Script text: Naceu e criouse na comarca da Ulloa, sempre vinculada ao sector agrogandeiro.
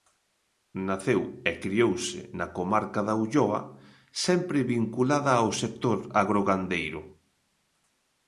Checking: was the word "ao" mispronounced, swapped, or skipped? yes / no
no